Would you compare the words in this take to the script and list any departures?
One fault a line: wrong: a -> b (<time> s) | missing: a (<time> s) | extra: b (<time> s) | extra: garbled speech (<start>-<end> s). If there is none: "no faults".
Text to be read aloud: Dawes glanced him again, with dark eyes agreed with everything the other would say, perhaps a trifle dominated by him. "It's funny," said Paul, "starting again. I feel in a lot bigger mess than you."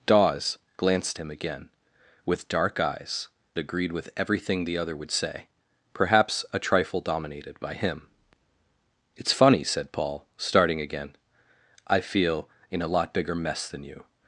no faults